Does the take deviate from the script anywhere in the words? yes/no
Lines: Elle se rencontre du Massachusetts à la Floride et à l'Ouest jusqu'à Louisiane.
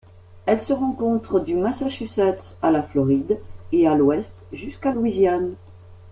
no